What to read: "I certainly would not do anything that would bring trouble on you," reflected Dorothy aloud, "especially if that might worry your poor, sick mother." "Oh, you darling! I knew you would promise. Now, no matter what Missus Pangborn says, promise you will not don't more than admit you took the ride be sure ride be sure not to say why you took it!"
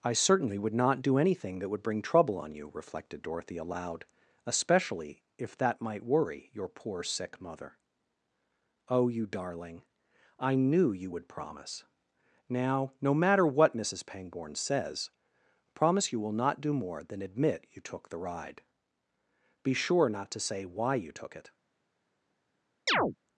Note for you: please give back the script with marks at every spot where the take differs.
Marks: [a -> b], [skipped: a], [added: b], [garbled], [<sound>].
"I certainly would not do anything that would bring trouble on you," reflected Dorothy aloud, "especially if that might worry your poor, sick mother." "Oh, you darling! I knew you would promise. Now, no matter what Missus Pangborn says, promise you will not [don't -> do] more than admit you took the ride be sure [skipped: ride be sure] not to say why you took it!" [chirp]